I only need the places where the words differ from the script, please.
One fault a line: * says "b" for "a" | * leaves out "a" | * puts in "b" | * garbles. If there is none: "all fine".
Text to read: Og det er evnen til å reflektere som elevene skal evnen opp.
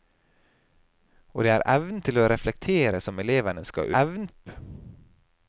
all fine